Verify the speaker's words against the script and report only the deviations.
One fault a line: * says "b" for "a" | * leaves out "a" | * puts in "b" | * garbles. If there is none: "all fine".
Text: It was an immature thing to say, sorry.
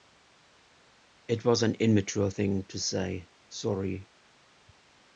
all fine